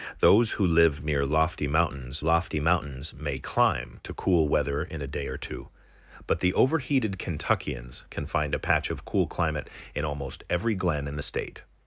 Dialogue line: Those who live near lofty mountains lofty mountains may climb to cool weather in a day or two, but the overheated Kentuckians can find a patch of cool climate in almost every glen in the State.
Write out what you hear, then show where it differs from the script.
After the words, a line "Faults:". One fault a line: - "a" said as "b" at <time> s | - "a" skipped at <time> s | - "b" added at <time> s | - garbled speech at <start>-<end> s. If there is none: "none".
Those who live near lofty mountains lofty mountains may climb to cool weather in a day or two, but the overheated Kentuckians can find a patch of cool climate in almost every glen in the State.
Faults:
none